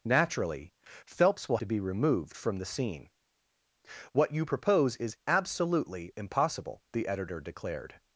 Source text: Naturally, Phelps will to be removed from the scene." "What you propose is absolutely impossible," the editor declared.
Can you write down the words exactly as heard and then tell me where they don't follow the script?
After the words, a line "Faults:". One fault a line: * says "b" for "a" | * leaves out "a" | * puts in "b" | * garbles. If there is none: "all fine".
Naturally, Phelps will to be removed from the scene." "What you propose is absolutely impossible," the editor declared.
Faults:
all fine